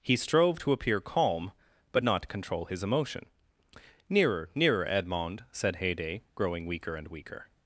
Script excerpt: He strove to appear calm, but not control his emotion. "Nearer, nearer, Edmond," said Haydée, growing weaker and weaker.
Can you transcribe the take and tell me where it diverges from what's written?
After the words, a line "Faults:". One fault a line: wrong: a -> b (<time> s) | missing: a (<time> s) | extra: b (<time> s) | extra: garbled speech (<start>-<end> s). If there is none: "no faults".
He strove to appear calm, but not control his emotion. "Nearer, nearer, Edmond," said Haydée, growing weaker and weaker.
Faults:
no faults